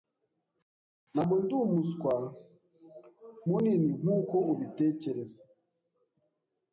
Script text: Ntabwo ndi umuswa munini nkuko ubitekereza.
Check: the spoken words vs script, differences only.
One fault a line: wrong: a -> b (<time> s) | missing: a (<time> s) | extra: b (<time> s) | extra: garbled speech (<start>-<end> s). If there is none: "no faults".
no faults